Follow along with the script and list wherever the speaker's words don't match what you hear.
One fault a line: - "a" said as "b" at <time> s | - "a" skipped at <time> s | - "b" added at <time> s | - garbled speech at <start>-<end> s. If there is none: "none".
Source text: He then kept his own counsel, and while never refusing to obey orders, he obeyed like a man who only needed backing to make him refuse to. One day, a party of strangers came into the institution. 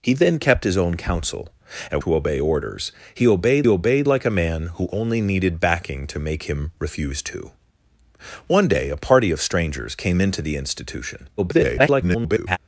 - "while never refusing" skipped at 2.0 s
- "obeyed" added at 3.7 s
- garbled speech at 11.4-12.6 s